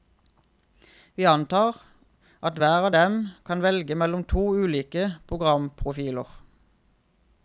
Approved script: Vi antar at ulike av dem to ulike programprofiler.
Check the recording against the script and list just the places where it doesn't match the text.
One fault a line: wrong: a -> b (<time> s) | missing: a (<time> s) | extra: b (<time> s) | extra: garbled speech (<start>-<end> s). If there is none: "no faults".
wrong: ulike -> hver (2.6 s)
extra: kan velge mellom (3.5 s)